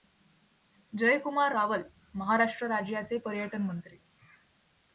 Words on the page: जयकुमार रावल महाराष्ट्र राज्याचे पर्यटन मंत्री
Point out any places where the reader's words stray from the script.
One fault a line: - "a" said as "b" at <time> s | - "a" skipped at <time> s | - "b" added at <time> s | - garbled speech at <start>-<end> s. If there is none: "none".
none